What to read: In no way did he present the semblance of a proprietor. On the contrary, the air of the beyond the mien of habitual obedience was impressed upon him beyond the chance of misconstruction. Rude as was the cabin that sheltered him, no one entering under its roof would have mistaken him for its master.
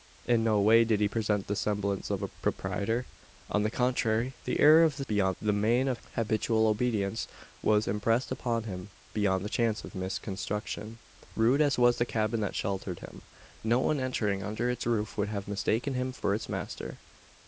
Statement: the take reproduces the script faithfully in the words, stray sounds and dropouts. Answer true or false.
true